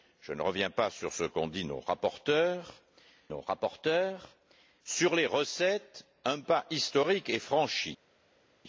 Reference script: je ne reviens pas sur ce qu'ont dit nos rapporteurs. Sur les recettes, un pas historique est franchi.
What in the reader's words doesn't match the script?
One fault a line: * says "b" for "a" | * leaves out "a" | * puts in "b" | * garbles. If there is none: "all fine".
* puts in "nos rapporteurs"